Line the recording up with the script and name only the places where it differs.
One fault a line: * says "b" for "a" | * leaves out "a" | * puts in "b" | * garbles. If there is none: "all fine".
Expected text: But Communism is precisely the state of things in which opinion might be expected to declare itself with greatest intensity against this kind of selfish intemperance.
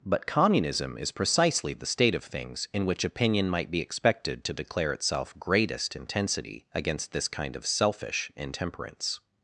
* leaves out "with"